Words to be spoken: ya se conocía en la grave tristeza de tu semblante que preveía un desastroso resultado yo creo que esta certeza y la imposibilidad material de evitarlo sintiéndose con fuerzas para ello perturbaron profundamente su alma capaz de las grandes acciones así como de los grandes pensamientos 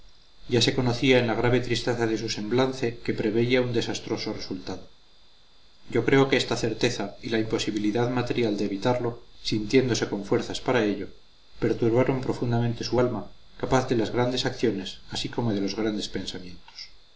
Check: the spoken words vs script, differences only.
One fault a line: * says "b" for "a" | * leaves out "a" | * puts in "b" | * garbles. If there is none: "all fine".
* says "su" for "tu"